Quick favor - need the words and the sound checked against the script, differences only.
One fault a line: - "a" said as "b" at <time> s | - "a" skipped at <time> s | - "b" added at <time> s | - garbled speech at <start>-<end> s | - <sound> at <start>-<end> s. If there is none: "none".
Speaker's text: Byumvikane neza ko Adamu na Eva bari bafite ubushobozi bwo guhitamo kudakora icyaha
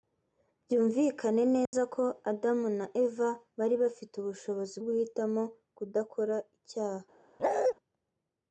- dropout at 1.7-1.7 s
- "bwo" skipped at 4.8 s
- bark at 7.4-7.7 s